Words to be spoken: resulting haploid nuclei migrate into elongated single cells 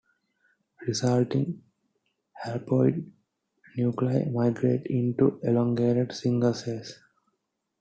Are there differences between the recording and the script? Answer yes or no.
no